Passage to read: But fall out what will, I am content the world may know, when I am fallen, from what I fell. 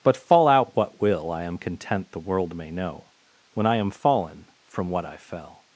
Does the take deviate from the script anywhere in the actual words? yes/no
no